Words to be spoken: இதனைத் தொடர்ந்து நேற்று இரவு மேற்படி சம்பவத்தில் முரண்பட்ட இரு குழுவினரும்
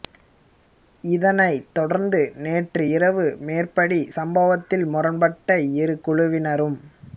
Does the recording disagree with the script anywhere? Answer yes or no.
no